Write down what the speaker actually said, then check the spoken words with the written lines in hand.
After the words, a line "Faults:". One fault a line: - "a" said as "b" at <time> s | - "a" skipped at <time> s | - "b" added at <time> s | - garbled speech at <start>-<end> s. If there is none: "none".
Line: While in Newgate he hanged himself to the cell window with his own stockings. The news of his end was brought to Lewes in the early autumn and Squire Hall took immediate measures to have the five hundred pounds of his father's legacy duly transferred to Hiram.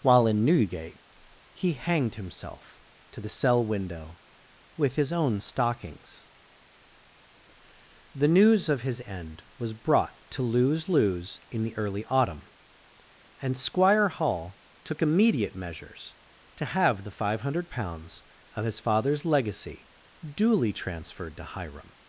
While in Newgate he hanged himself to the cell window with his own stockings. The news of his end was brought to Lewes Lewes in the early autumn and Squire Hall took immediate measures to have the five hundred pounds of his father's legacy duly transferred to Hiram.
Faults:
- "Lewes" added at 10.9 s